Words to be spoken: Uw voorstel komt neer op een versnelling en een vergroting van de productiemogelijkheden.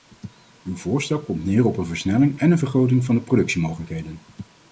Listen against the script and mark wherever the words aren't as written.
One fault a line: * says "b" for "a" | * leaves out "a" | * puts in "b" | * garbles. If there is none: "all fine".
all fine